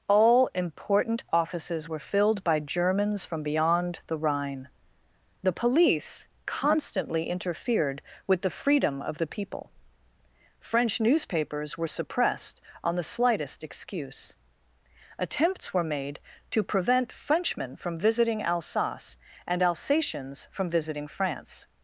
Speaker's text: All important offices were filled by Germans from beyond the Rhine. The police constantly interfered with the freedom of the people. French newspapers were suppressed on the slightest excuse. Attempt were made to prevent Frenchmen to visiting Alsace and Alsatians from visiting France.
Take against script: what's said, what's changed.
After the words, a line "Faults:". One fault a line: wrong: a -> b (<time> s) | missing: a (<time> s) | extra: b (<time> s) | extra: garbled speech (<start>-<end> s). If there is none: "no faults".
All important offices were filled by Germans from beyond the Rhine. The police constantly interfered with the freedom of the people. French newspapers were suppressed on the slightest excuse. Attempts were made to prevent Frenchmen from visiting Alsace and Alsatians from visiting France.
Faults:
wrong: Attempt -> Attempts (15.2 s)
wrong: to -> from (17.8 s)